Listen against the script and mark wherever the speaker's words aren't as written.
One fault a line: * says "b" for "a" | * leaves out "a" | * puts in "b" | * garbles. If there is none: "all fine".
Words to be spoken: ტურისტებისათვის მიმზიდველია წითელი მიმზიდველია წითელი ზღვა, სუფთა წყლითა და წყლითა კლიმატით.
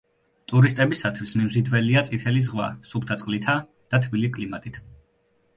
* leaves out "მიმზიდველია წითელი"
* says "თბილი" for "წყლითა"